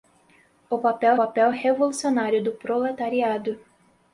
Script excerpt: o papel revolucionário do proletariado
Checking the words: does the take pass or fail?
fail